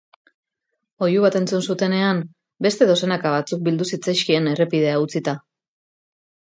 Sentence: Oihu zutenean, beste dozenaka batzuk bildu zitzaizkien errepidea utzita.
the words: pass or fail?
fail